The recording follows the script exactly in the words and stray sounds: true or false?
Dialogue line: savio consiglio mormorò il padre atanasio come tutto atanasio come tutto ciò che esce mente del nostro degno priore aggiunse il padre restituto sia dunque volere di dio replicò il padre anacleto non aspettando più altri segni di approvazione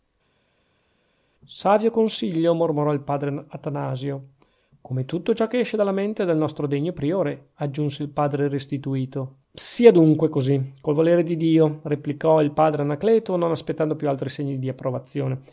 false